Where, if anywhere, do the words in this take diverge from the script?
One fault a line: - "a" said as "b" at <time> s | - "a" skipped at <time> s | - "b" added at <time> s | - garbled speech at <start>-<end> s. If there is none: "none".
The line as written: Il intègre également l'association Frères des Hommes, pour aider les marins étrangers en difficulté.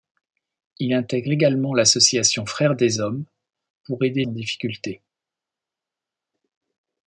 - "les marins étrangers" skipped at 4.2 s